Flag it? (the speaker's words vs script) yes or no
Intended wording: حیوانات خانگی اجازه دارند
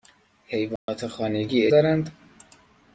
yes